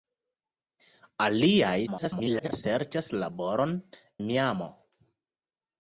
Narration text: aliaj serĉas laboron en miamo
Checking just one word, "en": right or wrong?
wrong